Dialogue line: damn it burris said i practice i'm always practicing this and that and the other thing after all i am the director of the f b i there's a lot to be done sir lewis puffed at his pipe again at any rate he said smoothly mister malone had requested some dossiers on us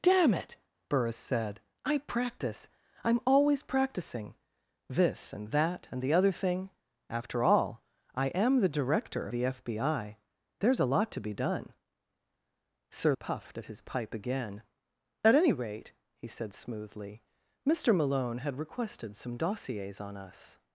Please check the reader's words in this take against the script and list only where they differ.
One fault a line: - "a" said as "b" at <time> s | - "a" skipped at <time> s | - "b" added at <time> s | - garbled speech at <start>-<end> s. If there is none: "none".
- "of" skipped at 9.3 s
- "lewis" skipped at 13.1 s